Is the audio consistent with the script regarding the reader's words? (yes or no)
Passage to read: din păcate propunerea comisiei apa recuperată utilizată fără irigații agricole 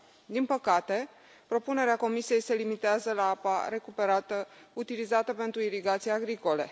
no